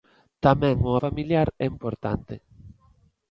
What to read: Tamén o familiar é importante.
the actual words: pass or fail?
pass